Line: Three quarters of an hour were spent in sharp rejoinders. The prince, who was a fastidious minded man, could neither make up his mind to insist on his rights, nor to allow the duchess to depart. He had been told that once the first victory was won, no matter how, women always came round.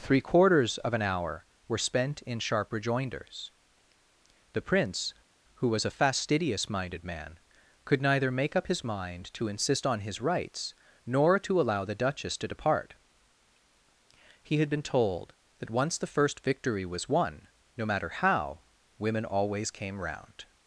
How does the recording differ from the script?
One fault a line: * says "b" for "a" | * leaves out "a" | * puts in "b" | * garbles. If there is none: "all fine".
all fine